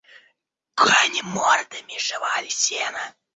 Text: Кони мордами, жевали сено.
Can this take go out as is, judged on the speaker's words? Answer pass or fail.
pass